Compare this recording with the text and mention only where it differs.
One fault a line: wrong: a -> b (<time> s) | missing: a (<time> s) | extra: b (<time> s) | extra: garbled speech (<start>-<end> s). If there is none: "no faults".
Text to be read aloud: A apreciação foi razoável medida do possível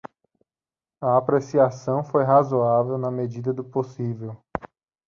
extra: na (3.0 s)